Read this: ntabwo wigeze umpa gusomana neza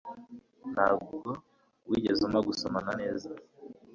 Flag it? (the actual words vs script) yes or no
no